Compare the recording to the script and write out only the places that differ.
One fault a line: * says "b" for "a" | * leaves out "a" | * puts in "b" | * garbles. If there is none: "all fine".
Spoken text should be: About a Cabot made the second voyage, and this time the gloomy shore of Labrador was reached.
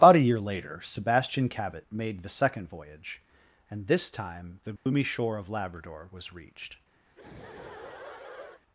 * puts in "year later Sebastian"